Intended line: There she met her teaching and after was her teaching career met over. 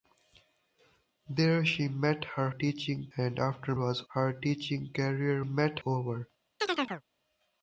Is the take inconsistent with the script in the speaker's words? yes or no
no